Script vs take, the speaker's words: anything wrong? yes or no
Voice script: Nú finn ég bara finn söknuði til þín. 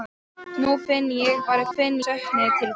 no